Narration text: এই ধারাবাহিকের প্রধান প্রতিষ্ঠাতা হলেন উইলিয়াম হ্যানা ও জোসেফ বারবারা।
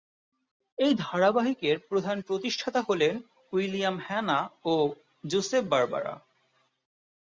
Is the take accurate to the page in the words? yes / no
yes